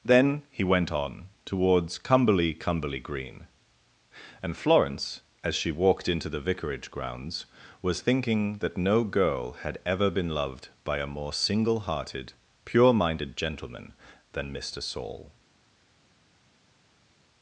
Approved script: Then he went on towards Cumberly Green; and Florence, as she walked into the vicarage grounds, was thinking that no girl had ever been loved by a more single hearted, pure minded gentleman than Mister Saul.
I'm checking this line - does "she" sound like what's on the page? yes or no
yes